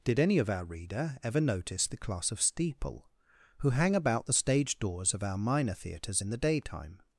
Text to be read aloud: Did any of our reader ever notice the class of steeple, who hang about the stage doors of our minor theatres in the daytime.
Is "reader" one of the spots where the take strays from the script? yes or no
no